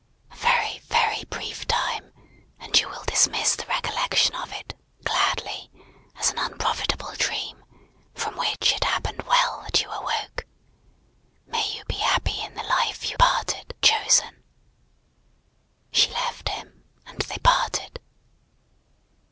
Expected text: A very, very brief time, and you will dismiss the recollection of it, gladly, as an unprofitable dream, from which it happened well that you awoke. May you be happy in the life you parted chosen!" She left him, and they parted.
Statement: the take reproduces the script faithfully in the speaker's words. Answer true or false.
true